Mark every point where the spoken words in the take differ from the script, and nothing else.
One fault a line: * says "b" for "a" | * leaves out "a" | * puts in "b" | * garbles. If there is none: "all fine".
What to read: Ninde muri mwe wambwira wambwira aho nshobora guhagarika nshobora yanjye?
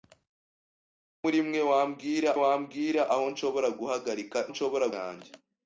all fine